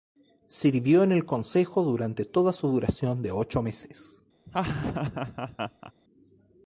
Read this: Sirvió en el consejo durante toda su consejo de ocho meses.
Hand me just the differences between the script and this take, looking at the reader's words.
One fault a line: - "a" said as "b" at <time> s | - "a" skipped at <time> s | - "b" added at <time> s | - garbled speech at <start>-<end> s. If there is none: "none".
- "consejo" said as "duración" at 2.7 s